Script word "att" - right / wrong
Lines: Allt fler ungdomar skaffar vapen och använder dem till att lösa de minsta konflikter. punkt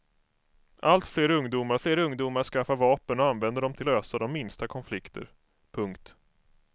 wrong